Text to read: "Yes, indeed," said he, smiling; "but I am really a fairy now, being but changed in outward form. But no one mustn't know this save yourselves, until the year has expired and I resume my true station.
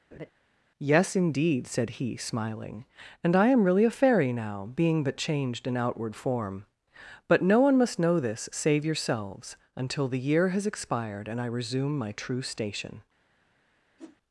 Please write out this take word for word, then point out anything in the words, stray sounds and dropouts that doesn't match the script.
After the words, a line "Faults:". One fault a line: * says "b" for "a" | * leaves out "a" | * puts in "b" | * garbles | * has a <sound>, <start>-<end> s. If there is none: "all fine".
"Yes, indeed," said he, smiling; "and I am really a fairy now, being but changed in outward form. But no one must know this save yourselves, until the year has expired and I resume my true station.
Faults:
* has a laugh, 0.1-0.3 s
* says "and" for "but"
* says "must" for "mustn't"
* has a whoosh, 14.0-14.2 s